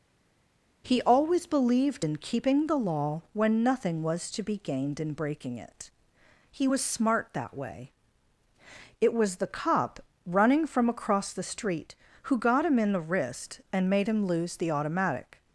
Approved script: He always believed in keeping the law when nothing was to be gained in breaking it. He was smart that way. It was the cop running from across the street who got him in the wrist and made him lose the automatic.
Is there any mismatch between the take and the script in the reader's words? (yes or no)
no